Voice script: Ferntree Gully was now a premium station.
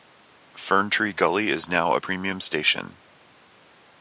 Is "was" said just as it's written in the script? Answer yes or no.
no